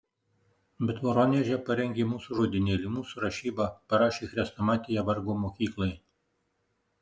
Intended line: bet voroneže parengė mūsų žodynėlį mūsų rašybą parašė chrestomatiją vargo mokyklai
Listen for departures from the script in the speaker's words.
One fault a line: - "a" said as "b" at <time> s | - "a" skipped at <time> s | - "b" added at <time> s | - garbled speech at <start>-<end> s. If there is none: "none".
none